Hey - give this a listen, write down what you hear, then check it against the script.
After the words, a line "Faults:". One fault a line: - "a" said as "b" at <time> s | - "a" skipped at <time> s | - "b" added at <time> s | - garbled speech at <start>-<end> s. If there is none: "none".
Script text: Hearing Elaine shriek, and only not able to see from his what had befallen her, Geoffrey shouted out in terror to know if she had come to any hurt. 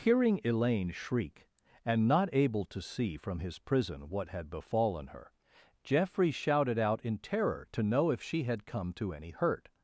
Hearing Elaine shriek, and not able to see from his prison what had befallen her, Geoffrey shouted out in terror to know if she had come to any hurt.
Faults:
- "only" skipped at 2.1 s
- "prison" added at 3.6 s